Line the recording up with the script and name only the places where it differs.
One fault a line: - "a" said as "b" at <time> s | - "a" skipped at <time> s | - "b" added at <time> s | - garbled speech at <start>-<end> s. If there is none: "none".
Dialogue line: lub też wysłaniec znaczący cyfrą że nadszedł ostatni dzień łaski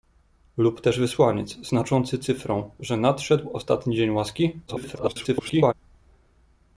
- garbled speech at 4.7-5.7 s